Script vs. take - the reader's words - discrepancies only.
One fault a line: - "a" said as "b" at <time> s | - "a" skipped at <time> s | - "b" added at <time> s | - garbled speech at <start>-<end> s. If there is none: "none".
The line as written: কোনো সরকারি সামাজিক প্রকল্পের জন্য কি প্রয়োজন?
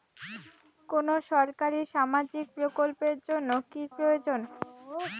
none